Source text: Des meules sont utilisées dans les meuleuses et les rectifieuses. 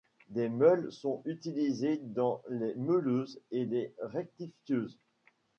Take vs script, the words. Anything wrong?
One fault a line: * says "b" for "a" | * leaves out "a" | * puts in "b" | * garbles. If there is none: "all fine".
all fine